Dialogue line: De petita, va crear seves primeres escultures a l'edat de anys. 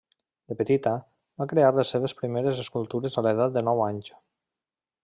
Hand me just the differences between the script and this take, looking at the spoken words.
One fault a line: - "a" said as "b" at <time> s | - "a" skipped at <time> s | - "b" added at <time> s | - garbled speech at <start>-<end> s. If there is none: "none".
- "les" added at 1.8 s
- "nou" added at 3.7 s